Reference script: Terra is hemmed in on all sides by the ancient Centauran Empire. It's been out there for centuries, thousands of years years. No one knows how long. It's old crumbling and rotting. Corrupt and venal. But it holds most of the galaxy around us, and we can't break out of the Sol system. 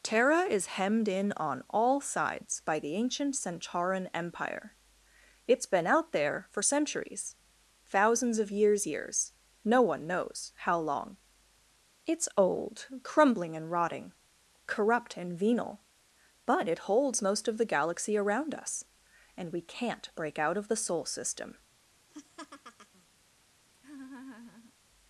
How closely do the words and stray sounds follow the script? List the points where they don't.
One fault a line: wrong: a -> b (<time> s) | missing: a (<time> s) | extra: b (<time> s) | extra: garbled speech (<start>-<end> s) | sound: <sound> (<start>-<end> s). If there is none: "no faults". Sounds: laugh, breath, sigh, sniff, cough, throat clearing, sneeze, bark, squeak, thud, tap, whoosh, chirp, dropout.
sound: laugh (22.1-23.1 s)
sound: laugh (23.7-24.7 s)